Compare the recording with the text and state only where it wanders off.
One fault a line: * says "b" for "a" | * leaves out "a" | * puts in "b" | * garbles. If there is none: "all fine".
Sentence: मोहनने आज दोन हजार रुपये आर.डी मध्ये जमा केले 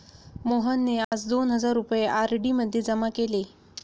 all fine